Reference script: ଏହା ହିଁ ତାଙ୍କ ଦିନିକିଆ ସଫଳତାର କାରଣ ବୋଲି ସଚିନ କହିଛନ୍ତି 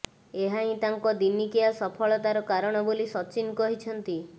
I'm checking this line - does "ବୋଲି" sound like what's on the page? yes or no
yes